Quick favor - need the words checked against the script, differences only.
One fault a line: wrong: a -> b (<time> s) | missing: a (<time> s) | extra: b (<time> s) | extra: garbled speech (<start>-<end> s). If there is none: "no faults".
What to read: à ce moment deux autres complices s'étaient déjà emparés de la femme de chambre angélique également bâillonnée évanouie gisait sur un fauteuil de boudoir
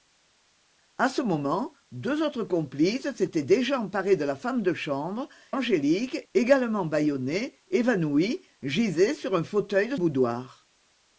no faults